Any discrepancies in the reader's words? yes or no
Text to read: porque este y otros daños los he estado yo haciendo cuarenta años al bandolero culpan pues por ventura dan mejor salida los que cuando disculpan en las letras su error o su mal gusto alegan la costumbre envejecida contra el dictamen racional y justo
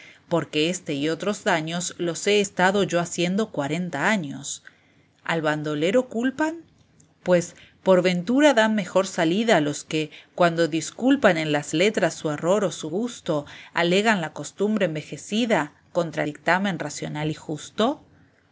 yes